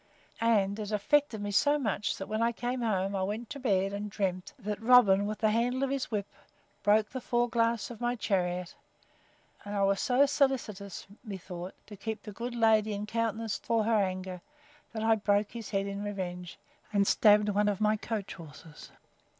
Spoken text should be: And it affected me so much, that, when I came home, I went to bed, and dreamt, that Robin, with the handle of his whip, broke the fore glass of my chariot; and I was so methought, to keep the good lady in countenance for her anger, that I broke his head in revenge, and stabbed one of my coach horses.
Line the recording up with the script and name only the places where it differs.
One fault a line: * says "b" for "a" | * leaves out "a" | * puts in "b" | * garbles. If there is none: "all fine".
* puts in "solicitous"